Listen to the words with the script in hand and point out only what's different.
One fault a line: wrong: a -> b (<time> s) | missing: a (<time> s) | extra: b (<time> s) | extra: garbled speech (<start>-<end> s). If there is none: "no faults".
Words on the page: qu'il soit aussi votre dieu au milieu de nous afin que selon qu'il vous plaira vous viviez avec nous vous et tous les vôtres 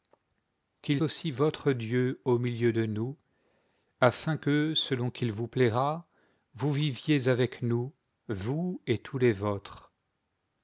missing: soit (1.0 s)